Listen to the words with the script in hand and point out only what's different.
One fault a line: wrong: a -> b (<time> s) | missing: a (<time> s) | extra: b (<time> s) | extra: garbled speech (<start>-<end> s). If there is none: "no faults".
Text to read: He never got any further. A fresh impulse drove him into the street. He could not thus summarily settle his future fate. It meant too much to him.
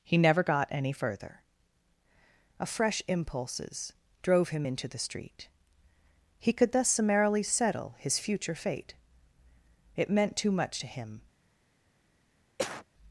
wrong: impulse -> impulses (3.1 s)
missing: not (6.7 s)